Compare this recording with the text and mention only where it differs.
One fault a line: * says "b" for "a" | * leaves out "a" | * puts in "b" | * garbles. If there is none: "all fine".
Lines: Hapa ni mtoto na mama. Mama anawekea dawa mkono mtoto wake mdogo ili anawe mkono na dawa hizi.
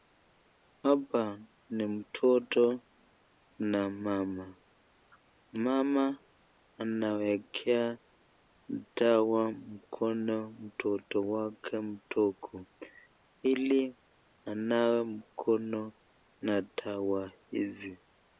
all fine